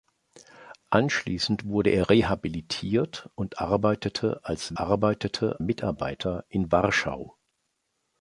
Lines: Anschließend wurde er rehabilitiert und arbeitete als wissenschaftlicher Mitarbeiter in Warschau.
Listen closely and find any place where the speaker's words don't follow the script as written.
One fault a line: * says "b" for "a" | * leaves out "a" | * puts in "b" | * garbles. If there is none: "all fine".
* says "arbeitete" for "wissenschaftlicher"